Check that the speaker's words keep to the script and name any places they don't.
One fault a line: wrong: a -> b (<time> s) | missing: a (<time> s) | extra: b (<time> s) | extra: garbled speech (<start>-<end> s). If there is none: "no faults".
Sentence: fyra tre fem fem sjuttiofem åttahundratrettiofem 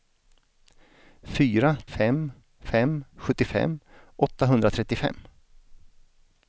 missing: tre (1.7 s)